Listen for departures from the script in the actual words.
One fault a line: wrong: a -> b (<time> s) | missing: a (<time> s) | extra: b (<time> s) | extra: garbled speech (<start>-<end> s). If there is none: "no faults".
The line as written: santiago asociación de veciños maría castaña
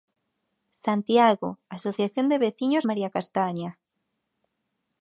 no faults